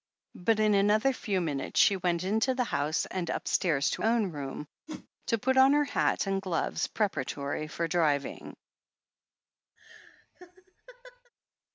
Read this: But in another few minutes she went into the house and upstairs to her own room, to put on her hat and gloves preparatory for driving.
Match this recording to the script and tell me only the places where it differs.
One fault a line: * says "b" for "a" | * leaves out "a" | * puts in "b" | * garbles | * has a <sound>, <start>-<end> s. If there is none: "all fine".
* leaves out "her"
* has a whoosh, 4.9-5.1 s
* has a laugh, 9.8-11.3 s